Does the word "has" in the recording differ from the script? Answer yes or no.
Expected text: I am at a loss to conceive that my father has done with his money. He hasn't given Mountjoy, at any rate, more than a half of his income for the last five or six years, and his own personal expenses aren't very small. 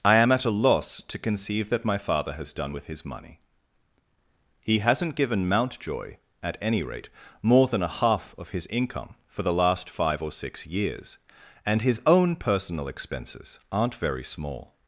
no